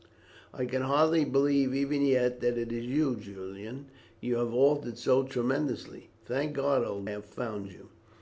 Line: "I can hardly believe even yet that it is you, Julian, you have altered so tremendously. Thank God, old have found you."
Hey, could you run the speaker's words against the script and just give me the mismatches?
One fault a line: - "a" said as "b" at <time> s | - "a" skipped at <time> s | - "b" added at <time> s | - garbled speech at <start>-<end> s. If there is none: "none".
none